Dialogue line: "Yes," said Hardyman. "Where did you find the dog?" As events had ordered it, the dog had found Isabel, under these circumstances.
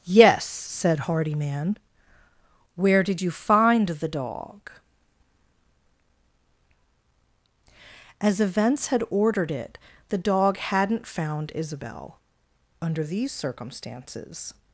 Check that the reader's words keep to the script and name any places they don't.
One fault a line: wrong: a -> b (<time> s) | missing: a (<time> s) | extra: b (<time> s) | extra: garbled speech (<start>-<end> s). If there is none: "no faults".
wrong: had -> hadn't (10.6 s)